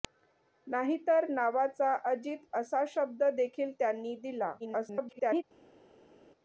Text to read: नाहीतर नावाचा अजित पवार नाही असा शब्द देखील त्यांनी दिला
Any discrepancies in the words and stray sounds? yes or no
yes